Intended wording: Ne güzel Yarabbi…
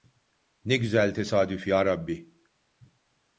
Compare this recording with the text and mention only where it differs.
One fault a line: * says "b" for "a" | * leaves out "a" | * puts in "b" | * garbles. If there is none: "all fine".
* puts in "tesadüf"